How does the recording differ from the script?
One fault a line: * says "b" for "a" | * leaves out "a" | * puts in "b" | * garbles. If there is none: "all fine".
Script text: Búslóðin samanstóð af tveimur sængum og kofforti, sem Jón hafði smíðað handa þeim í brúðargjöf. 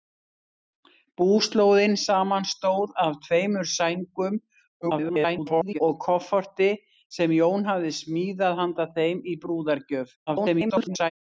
* garbles
* garbles